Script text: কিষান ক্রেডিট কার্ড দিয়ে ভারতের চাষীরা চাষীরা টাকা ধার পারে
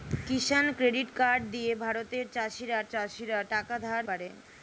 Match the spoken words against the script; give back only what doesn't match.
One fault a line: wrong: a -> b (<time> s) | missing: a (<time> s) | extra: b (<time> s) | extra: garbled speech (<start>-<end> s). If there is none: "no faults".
no faults